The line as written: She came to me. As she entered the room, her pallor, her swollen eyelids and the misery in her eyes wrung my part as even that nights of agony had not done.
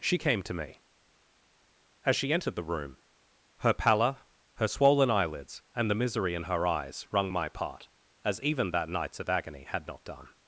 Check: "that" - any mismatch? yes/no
no